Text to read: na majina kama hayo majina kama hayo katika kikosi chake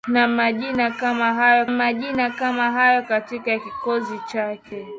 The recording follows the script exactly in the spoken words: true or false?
true